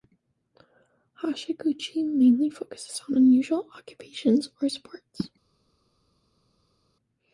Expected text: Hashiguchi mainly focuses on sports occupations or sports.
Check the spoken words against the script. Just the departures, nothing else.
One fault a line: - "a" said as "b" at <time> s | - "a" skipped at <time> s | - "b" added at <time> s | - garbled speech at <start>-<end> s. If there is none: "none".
- "sports" said as "unusual" at 3.2 s